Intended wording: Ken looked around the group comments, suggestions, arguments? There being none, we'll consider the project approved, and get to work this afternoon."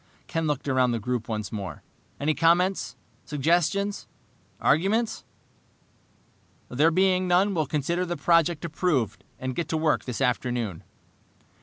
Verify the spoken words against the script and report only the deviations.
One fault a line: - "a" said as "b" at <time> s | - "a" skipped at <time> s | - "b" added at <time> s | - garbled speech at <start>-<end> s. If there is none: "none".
- "once more Any" added at 1.3 s